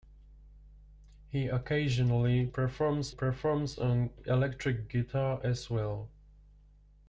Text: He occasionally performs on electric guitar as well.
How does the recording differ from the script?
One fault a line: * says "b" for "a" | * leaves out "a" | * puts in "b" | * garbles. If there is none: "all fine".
* puts in "performs"